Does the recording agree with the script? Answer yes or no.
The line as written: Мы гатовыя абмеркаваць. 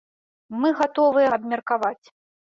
yes